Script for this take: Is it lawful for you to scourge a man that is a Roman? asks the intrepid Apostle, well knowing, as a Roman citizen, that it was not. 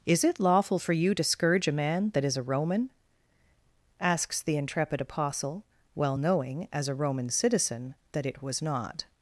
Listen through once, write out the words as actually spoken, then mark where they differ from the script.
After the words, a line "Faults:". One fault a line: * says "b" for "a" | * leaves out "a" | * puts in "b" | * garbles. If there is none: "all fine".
Is it lawful for you to scourge a man that is a Roman? asks the intrepid Apostle, well knowing, as a Roman citizen, that it was not.
Faults:
all fine